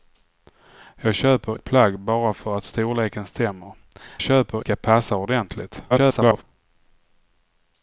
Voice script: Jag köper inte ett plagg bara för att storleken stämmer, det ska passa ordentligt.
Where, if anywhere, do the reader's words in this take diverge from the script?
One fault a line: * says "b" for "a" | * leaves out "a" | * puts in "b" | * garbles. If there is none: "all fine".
* leaves out "inte"
* says "köper" for "det"
* garbles